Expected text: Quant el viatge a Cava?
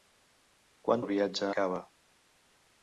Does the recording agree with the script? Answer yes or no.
yes